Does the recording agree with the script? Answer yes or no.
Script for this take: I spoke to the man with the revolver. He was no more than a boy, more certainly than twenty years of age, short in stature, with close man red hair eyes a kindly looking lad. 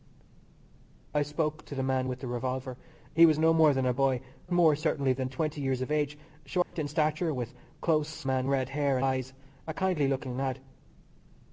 yes